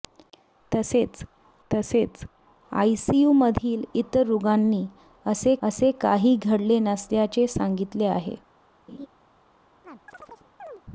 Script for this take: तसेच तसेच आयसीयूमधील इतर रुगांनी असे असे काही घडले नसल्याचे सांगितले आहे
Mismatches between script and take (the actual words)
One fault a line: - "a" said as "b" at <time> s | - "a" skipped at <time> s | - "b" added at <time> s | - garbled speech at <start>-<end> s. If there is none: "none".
none